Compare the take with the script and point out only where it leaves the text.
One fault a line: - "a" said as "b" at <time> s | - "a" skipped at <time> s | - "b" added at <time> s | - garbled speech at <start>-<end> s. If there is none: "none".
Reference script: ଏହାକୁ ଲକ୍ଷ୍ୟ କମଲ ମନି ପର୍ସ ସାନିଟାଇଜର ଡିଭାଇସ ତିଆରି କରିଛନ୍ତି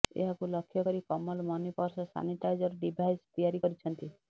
- "କରି" added at 0.8 s